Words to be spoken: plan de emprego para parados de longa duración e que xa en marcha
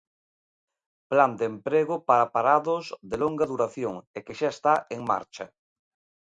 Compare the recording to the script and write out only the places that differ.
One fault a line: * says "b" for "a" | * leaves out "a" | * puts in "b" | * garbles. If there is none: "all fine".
* puts in "está"